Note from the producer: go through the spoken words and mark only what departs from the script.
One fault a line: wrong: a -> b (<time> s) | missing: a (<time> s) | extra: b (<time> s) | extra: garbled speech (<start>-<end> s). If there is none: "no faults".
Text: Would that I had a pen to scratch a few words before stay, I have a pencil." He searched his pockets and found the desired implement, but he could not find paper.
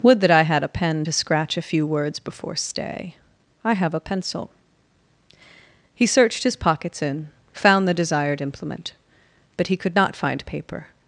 wrong: and -> in (7.0 s)